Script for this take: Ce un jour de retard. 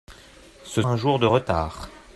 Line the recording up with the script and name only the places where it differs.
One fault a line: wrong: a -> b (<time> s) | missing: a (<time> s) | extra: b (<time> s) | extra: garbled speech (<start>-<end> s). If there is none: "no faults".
no faults